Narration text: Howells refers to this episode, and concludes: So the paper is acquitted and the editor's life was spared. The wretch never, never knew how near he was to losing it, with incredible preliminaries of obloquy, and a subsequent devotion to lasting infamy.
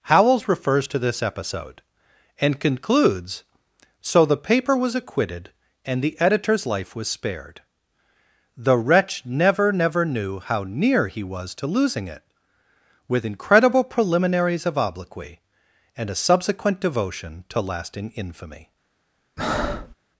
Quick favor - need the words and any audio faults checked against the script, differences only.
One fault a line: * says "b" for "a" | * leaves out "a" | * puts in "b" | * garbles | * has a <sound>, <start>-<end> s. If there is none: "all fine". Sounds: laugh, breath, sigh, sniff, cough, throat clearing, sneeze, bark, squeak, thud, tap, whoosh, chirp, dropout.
* says "was" for "is"
* has a breath, 19.4-19.9 s